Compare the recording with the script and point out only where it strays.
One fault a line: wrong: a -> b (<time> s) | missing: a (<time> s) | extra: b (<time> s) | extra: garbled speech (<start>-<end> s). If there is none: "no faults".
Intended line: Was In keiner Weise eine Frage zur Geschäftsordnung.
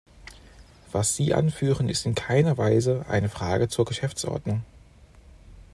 extra: Sie anführen ist (1.1 s)